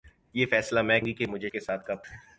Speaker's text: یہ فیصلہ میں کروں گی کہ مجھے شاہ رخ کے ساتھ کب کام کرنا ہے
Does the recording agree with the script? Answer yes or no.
no